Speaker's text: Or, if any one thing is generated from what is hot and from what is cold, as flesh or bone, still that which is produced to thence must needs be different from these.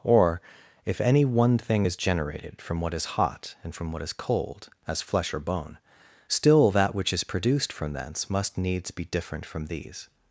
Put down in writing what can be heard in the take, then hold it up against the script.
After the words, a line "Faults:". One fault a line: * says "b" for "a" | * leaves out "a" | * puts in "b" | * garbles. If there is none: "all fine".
Or, if any one thing is generated from what is hot and from what is cold, as flesh or bone, still that which is produced from thence must needs be different from these.
Faults:
* says "from" for "to"